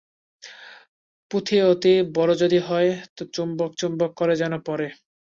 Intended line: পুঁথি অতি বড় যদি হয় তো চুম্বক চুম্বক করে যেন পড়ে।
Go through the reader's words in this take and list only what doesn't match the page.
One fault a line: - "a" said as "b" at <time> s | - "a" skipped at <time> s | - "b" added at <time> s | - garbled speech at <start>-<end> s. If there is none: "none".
none